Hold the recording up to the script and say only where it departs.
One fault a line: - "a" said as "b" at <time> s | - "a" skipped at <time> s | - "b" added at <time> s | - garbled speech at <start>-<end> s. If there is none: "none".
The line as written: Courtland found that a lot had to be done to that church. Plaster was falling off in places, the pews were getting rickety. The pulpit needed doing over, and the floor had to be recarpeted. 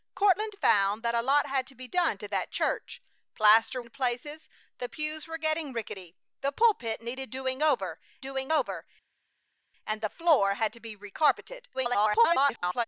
- "was falling off" skipped at 3.8 s
- "doing over" added at 8.2 s
- garbled speech at 11.7-12.8 s